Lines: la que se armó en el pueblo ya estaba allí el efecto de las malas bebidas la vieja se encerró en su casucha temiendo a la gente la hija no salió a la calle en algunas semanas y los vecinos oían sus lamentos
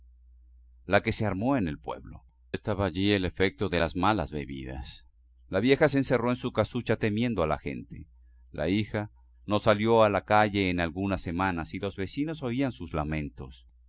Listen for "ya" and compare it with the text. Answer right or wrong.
wrong